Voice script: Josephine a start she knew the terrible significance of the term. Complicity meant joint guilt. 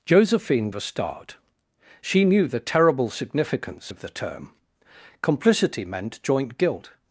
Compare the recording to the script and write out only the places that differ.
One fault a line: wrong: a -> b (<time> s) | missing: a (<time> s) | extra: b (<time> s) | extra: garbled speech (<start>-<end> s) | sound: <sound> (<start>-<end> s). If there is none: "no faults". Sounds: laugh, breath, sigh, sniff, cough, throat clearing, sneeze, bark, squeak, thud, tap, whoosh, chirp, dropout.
no faults